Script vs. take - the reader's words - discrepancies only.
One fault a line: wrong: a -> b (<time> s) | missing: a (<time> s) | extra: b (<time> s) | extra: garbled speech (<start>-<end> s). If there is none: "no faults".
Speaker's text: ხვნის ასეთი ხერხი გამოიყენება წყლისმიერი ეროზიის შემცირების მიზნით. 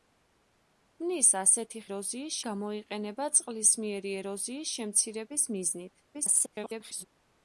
wrong: ხერხი -> ეროზიის (1.9 s)
extra: garbled speech (6.1-7.1 s)